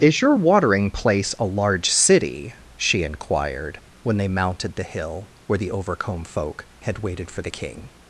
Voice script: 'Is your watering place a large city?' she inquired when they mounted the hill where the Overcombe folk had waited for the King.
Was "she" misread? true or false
false